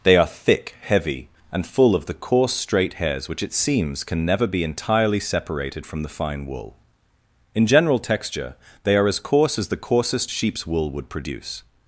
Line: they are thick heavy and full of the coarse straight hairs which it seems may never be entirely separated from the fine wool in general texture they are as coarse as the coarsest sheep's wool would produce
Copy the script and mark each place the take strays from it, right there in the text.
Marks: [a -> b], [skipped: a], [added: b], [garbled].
they are thick heavy and full of the coarse straight hairs which it seems [may -> can] never be entirely separated from the fine wool in general texture they are as coarse as the coarsest sheep's wool would produce